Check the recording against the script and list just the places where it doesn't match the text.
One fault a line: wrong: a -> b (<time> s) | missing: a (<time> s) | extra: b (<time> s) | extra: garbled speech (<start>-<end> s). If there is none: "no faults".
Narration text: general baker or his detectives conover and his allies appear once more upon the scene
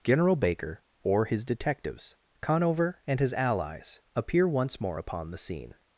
no faults